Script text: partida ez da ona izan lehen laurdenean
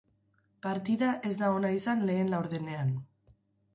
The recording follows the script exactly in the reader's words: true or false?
true